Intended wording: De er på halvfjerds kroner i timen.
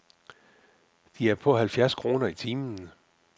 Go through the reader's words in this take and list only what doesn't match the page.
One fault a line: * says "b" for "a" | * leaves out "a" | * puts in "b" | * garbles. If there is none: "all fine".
all fine